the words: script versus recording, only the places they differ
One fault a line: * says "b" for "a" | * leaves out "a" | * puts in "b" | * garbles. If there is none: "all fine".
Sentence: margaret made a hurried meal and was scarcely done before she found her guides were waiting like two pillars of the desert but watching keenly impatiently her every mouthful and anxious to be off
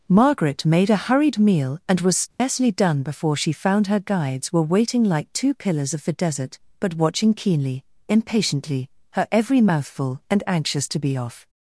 all fine